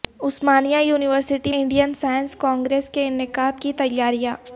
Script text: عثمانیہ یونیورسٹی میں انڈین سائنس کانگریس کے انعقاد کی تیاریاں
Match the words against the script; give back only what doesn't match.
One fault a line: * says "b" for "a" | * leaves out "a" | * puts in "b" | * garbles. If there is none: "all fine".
* leaves out "میں"